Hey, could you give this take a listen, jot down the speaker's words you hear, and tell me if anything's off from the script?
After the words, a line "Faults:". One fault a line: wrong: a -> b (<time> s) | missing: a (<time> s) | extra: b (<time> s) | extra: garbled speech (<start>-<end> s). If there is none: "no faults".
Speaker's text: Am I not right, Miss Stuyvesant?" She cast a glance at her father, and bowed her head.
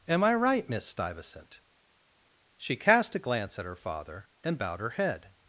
Am I right, Miss Stuyvesant?" She cast a glance at her father, and bowed her head.
Faults:
missing: not (0.3 s)